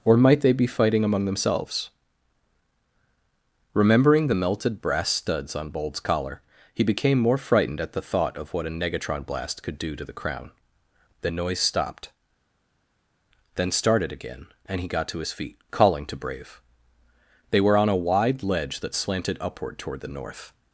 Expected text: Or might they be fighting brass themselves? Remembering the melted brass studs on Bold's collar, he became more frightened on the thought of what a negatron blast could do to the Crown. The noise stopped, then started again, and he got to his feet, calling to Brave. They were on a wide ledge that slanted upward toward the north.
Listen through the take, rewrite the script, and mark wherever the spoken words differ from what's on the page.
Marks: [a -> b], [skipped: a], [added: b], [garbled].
Or might they be fighting [brass -> among] themselves? Remembering the melted brass studs on Bold's collar, he became more frightened [on -> at] the thought of what a negatron blast could do to the Crown. The noise stopped, then started again, and he got to his feet, calling to Brave. They were on a wide ledge that slanted upward toward the north.